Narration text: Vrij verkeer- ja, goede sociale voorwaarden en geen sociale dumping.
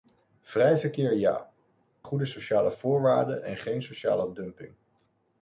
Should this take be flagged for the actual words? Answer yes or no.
no